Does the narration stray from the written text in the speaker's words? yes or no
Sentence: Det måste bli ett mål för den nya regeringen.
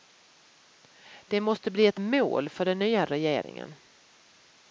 no